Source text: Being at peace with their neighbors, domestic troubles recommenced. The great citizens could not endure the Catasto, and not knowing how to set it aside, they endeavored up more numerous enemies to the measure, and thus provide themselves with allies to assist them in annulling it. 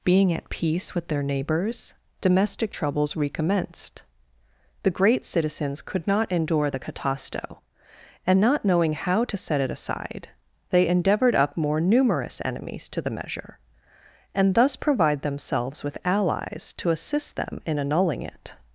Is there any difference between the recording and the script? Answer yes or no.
no